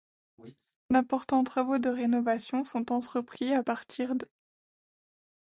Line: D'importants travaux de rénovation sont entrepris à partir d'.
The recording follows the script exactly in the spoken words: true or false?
true